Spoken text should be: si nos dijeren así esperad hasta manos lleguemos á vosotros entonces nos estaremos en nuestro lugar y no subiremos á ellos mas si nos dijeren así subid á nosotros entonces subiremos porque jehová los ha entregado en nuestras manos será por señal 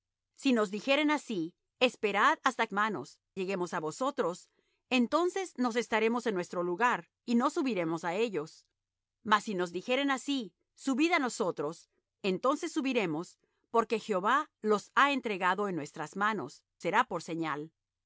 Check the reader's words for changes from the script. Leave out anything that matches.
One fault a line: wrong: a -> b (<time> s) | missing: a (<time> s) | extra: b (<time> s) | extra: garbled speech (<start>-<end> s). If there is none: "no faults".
no faults